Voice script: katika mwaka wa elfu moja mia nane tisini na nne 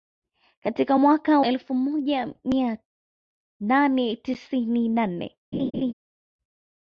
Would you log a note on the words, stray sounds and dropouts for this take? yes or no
yes